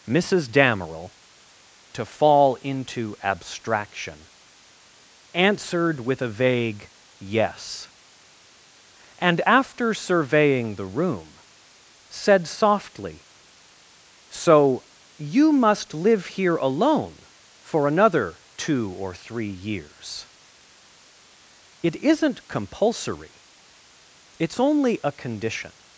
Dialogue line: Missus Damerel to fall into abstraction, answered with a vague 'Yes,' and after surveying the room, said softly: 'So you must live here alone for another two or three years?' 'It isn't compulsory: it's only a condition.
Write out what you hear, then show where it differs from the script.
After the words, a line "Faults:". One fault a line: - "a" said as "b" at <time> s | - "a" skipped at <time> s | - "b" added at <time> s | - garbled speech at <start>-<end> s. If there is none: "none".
Missus Damerel to fall into abstraction, answered with a vague 'Yes,' and after surveying the room, said softly: 'So you must live here alone for another two or three years?' 'It isn't compulsory: it's only a condition.
Faults:
none